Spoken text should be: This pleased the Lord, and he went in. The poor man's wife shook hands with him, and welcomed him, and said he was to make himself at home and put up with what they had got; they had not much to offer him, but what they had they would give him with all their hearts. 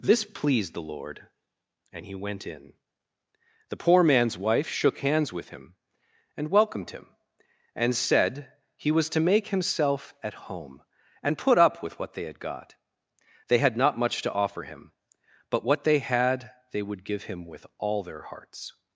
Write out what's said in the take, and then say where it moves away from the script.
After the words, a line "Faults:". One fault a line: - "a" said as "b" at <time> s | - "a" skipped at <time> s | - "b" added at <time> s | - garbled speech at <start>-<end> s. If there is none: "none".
This pleased the Lord, and he went in. The poor man's wife shook hands with him, and welcomed him, and said he was to make himself at home and put up with what they had got; they had not much to offer him, but what they had they would give him with all their hearts.
Faults:
none